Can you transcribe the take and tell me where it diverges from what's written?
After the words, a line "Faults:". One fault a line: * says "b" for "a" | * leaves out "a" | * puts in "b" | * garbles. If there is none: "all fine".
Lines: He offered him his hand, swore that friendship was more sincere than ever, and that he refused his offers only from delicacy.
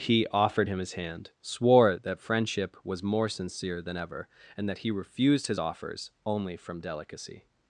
He offered him his hand, swore that friendship was more sincere than ever, and that he refused his offers only from delicacy.
Faults:
all fine